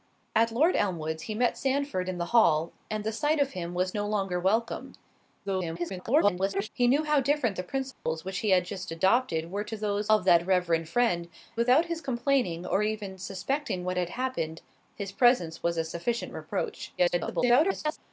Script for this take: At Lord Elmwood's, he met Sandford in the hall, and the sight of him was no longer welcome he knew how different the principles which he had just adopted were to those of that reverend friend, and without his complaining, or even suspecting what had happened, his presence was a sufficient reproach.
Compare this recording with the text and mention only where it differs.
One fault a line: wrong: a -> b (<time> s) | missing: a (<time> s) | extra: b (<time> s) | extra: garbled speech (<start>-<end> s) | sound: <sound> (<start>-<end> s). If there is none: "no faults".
extra: garbled speech (5.4-6.7 s)
sound: dropout (7.9-8.1 s)
missing: and (11.3 s)
extra: garbled speech (17.0-18.0 s)